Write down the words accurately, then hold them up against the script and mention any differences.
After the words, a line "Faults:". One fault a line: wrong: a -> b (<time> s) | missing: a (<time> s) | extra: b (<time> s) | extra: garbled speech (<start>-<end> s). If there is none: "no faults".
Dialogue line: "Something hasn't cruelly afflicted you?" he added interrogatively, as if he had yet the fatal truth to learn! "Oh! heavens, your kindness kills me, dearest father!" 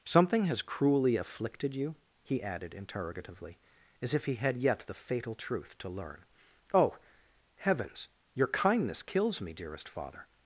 "Something has cruelly afflicted you?" he added interrogatively, as if he had yet the fatal truth to learn! "Oh! heavens, your kindness kills me, dearest father!"
Faults:
wrong: hasn't -> has (0.5 s)